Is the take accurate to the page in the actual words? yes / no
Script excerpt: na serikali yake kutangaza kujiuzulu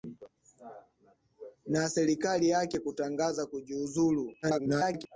no